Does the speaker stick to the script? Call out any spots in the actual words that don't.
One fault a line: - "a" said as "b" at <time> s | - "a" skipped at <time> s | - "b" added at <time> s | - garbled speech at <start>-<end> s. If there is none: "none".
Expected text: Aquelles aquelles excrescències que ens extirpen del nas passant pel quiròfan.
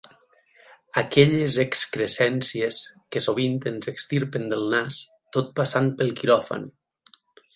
- "aquelles" skipped at 1.6 s
- "sovint" added at 3.2 s
- "tot" added at 5.4 s